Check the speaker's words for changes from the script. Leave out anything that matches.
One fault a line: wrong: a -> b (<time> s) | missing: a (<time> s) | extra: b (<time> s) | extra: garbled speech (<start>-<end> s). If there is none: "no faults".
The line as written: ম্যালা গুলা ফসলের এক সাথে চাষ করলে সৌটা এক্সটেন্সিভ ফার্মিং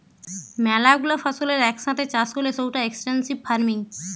no faults